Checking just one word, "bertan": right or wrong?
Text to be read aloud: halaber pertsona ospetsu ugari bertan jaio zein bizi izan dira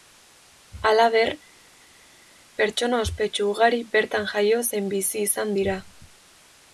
right